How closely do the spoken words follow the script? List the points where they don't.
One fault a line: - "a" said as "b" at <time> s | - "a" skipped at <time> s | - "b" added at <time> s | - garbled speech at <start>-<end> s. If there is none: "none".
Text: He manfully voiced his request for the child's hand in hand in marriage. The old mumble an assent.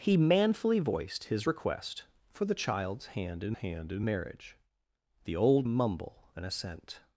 none